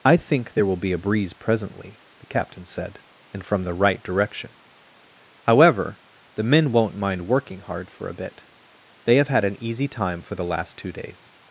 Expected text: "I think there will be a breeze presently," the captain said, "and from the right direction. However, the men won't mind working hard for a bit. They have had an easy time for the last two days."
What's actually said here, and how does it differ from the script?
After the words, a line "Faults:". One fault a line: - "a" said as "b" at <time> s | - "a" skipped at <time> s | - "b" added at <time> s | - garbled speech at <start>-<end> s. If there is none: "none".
"I think there will be a breeze presently," the captain said, "and from the right direction. However, the men won't mind working hard for a bit. They have had an easy time for the last two days."
Faults:
none